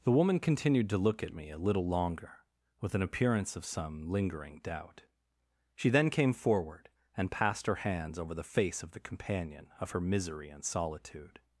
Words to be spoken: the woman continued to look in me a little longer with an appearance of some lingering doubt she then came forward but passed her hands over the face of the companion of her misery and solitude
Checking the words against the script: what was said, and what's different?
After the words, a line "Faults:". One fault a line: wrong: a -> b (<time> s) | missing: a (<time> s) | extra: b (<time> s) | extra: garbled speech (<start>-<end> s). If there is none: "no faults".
the woman continued to look at me a little longer with an appearance of some lingering doubt she then came forward and passed her hands over the face of the companion of her misery and solitude
Faults:
wrong: in -> at (1.2 s)
wrong: but -> and (7.2 s)